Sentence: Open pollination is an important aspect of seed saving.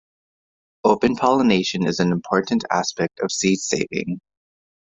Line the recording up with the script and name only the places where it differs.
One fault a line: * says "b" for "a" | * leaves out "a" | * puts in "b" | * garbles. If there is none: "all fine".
all fine